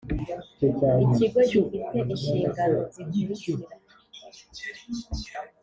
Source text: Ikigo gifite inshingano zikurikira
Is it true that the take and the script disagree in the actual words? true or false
false